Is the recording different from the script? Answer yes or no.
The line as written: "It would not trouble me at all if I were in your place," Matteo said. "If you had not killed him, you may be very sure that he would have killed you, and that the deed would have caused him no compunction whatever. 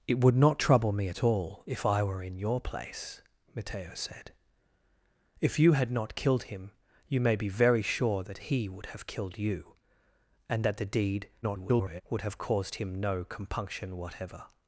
yes